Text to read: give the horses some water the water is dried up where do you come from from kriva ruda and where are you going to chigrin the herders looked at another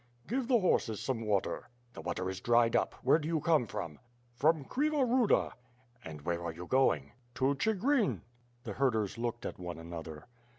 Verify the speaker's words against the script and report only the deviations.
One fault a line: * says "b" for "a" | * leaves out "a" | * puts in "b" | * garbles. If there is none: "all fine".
* puts in "one"